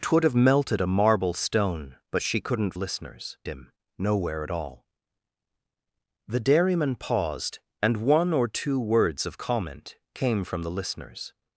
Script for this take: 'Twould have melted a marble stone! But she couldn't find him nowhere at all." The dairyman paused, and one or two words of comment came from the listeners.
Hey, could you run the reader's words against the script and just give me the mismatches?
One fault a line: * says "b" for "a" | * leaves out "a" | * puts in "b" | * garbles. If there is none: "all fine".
* says "listeners" for "find"